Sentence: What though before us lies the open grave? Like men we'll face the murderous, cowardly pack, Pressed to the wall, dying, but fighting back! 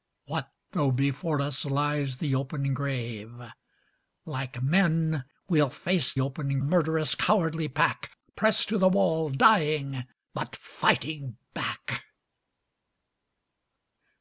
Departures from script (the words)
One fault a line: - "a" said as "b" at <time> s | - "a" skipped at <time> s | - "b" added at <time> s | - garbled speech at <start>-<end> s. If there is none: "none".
- "the" said as "open" at 6.2 s